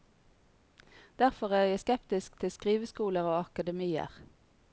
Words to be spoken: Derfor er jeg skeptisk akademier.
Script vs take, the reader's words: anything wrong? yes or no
yes